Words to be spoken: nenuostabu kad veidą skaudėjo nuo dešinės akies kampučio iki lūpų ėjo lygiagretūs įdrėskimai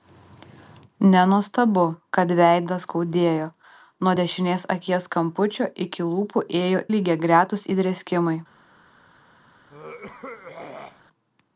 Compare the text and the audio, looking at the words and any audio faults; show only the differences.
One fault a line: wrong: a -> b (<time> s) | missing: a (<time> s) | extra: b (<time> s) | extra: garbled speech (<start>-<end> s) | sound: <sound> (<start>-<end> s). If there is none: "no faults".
sound: throat clearing (9.7-11.0 s)